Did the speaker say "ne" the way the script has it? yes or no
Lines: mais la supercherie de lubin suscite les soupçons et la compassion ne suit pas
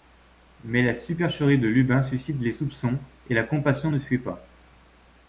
yes